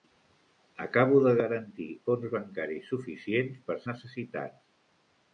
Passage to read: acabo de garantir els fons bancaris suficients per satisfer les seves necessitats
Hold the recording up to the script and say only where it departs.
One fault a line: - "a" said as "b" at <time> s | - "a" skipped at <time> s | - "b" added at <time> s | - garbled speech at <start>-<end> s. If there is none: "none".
- "els" skipped at 1.9 s
- "satisfer les seves" skipped at 3.8 s